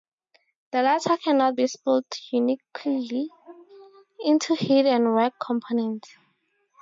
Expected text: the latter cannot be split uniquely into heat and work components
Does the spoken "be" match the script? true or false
true